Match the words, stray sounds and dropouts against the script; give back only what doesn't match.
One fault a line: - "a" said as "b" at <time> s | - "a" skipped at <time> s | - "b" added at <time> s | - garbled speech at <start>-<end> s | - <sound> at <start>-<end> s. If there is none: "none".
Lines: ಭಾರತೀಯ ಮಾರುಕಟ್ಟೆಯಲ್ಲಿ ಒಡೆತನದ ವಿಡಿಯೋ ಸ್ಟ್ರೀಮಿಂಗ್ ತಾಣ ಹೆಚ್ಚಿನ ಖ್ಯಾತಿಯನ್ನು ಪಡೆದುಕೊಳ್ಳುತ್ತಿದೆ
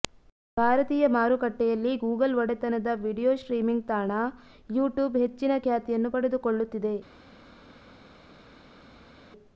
- "ಗೂಗಲ್" added at 2.0 s
- "ಯೂಟ್ಯೂಬ್" added at 4.7 s